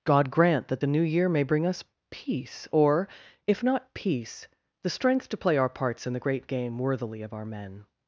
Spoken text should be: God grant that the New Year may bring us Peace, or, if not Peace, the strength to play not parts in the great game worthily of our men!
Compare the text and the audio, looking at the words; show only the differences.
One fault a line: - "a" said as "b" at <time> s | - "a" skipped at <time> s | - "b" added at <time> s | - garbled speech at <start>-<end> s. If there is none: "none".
- "not" said as "our" at 5.6 s